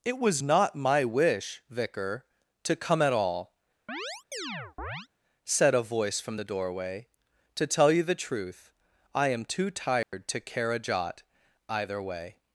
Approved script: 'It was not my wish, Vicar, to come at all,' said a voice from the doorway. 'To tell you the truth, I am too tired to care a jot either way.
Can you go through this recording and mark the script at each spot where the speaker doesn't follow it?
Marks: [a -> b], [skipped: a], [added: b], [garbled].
'It was not my wish, Vicar, to come at all,' said a voice from the doorway. 'To tell you the truth, I am too tired to care a jot either way.